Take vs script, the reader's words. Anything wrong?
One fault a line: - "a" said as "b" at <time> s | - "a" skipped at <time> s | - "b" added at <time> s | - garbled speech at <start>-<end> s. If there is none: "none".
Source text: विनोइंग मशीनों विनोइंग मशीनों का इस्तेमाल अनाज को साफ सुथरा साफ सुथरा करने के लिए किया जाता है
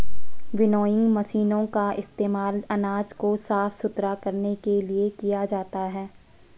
- "विनोइंग मशीनों" skipped at 1.6 s
- "साफ सुथरा" skipped at 4.1 s